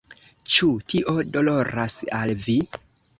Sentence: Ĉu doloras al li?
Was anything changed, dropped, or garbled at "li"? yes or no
yes